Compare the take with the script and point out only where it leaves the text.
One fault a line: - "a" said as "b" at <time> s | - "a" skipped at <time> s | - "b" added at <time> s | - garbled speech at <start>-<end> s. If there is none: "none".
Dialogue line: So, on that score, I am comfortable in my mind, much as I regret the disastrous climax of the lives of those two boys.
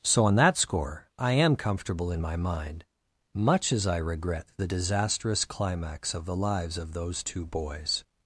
none